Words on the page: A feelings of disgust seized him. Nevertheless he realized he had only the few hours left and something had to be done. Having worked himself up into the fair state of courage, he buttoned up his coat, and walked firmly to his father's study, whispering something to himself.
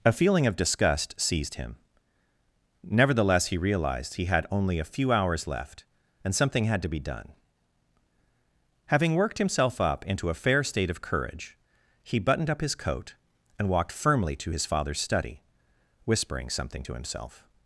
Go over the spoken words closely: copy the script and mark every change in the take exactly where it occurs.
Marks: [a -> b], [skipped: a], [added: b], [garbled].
A [feelings -> feeling] of disgust seized him. Nevertheless he realized he had only [the -> a] few hours left and something had to be done. Having worked himself up into [the -> a] fair state of courage, he buttoned up his coat, and walked firmly to his father's study, whispering something to himself.